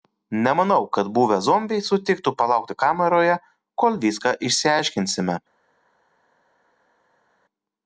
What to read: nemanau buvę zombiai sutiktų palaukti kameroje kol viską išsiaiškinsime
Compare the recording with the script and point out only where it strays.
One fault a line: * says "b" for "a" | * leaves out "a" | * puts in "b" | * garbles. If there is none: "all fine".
* puts in "kad"